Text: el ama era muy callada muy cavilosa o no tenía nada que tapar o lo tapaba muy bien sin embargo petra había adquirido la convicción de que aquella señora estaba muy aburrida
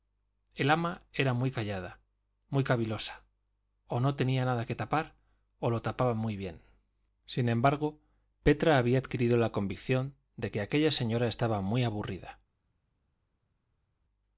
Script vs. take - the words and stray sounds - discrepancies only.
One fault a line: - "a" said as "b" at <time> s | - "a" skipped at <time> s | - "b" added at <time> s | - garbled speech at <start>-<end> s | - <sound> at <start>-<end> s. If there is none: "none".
none